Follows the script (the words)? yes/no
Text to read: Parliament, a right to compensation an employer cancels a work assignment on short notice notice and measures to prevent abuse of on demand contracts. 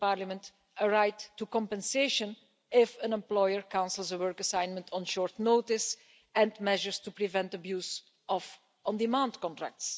no